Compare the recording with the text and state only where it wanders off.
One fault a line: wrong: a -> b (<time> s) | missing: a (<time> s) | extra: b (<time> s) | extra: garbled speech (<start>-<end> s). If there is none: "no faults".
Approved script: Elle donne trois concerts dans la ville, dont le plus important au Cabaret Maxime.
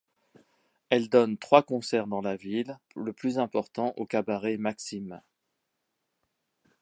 missing: dont (2.8 s)